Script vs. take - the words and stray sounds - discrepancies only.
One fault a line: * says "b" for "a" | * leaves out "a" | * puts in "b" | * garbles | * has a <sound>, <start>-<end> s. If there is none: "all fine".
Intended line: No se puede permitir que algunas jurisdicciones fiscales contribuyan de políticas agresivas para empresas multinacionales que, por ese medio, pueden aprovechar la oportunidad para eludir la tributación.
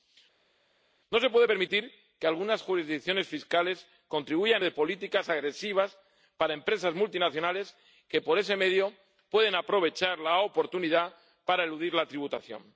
all fine